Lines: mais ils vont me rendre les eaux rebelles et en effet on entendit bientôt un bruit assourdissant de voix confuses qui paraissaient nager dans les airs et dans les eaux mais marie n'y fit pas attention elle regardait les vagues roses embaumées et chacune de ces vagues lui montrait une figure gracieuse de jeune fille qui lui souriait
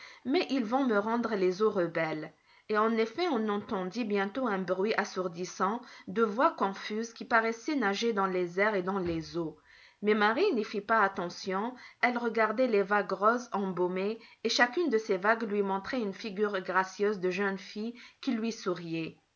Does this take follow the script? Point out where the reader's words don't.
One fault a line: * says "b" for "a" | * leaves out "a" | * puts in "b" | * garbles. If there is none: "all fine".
all fine